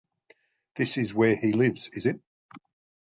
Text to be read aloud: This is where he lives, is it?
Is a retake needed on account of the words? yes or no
no